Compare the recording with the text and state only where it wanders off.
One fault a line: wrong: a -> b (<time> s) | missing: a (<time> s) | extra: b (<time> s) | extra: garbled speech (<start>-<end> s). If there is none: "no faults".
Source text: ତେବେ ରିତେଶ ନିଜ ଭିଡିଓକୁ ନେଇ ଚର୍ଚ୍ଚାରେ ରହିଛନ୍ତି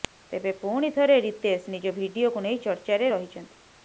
extra: ପୁଣି ଥରେ (0.6 s)